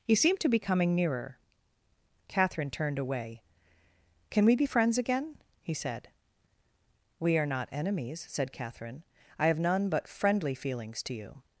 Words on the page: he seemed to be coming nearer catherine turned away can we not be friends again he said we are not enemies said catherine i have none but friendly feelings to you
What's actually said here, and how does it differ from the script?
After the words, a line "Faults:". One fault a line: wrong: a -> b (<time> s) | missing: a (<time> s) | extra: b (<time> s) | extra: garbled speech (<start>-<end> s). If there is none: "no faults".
he seemed to be coming nearer catherine turned away can we be friends again he said we are not enemies said catherine i have none but friendly feelings to you
Faults:
missing: not (4.5 s)